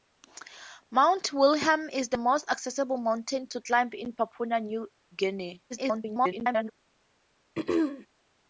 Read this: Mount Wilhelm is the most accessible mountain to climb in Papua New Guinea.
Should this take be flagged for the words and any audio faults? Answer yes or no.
yes